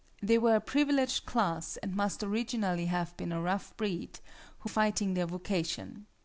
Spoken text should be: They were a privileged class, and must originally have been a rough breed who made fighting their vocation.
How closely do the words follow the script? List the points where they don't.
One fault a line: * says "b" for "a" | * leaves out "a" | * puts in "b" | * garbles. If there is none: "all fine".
* leaves out "made"